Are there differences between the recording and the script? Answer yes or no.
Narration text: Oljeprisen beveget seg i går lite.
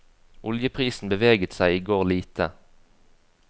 no